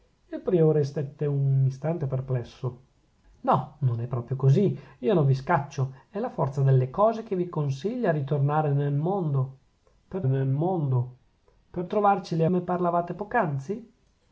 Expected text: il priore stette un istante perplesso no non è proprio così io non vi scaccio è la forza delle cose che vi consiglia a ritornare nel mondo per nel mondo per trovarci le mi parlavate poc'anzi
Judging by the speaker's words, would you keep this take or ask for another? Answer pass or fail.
pass